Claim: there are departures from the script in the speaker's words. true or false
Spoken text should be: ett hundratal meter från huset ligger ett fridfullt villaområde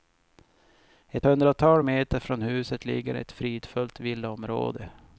false